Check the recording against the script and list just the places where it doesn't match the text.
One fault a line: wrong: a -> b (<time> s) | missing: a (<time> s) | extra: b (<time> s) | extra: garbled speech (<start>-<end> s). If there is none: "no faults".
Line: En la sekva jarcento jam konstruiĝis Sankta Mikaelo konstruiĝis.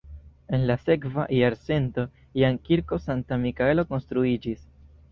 wrong: konstruiĝis -> kirko (2.7 s)